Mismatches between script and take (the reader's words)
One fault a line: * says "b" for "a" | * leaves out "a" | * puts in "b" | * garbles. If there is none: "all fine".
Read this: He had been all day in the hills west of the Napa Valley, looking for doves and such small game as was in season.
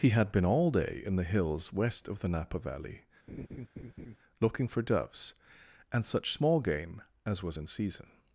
all fine